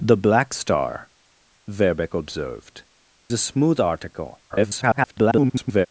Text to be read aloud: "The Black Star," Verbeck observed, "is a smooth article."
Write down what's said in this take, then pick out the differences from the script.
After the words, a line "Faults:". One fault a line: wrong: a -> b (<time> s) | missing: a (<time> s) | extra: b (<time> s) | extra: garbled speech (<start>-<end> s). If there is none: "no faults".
"The Black Star," Verbeck observed, "a smooth article." [garbled]
Faults:
missing: is (2.8 s)
extra: garbled speech (4.5-5.9 s)